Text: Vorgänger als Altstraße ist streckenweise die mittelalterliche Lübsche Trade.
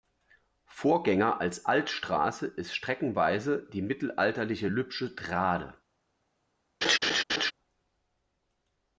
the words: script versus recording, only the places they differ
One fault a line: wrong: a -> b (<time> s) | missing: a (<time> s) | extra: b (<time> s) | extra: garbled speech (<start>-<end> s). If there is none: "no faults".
no faults